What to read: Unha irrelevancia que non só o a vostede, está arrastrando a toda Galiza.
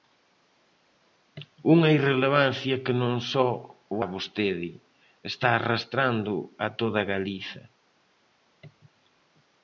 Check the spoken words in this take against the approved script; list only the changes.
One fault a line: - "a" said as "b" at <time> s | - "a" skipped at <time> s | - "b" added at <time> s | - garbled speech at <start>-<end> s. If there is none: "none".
none